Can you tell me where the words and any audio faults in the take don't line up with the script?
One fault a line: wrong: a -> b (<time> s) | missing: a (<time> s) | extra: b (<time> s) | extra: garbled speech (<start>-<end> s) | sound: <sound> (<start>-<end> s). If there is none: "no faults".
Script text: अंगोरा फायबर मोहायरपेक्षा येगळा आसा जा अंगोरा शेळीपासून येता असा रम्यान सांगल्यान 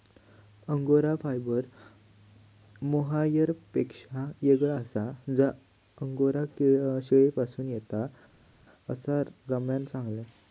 no faults